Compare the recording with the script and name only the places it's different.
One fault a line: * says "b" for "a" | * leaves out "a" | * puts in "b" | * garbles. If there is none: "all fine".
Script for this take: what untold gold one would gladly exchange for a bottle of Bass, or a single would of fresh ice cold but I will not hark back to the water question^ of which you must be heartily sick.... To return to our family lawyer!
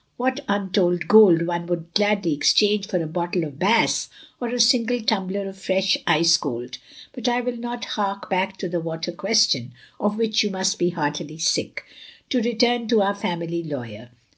* says "tumbler" for "would"